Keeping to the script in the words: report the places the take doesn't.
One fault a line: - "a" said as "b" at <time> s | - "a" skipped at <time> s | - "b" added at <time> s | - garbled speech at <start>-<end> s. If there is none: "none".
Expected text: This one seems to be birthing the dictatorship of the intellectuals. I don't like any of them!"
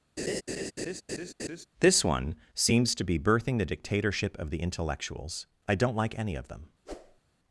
none